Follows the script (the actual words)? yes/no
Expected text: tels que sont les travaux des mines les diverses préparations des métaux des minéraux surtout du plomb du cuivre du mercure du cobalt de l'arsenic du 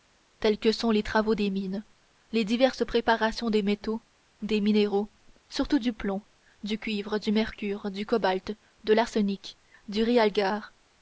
yes